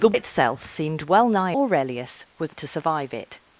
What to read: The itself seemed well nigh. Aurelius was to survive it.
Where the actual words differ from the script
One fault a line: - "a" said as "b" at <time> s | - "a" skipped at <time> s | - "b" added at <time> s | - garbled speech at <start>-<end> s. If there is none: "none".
none